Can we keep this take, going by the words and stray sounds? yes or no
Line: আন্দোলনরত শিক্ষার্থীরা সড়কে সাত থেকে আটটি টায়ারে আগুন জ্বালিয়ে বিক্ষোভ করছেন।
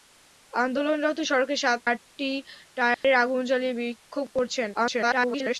no